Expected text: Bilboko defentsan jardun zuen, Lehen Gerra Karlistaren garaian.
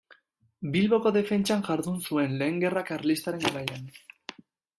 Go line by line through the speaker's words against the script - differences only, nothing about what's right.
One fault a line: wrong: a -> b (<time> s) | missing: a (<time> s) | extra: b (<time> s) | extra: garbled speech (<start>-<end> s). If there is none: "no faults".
no faults